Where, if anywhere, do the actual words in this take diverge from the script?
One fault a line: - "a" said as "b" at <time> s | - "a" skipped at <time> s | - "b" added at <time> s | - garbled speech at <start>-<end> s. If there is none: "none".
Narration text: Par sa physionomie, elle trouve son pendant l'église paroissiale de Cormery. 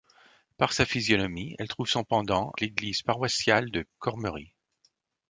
none